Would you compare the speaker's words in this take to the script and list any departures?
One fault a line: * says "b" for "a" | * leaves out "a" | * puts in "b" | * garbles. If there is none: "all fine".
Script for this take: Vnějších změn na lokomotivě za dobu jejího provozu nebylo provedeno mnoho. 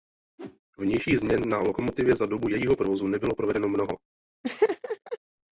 all fine